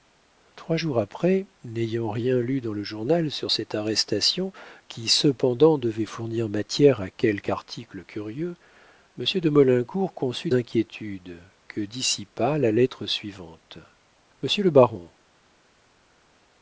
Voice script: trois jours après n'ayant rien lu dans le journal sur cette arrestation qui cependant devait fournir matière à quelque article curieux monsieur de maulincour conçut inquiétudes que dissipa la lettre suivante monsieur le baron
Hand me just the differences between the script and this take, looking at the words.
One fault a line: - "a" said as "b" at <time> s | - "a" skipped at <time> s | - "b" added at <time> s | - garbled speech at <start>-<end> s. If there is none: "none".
none